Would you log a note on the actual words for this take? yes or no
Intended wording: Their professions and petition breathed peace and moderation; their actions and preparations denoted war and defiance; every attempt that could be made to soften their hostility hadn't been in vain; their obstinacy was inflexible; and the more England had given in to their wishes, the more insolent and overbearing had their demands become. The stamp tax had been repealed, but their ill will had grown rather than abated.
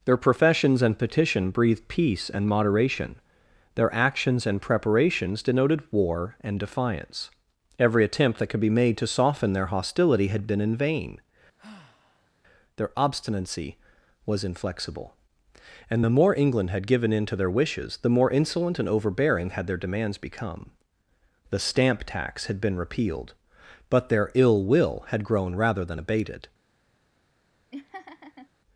yes